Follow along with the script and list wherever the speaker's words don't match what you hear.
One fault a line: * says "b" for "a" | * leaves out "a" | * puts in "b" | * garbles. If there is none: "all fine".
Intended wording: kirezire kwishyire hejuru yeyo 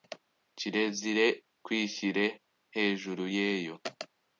all fine